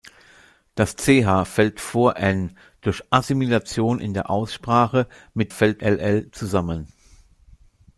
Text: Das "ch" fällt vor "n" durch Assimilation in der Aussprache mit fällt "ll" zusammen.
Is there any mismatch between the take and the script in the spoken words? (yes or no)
no